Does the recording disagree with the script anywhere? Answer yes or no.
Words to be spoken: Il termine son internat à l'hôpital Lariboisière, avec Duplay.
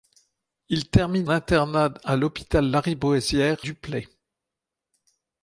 yes